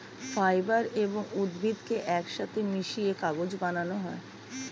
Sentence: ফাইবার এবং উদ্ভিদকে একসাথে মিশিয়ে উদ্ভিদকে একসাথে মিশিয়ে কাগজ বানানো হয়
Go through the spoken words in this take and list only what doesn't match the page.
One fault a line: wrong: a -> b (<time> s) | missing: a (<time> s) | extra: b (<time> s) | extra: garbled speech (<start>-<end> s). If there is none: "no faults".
missing: উদ্ভিদকে একসাথে মিশিয়ে (3.1 s)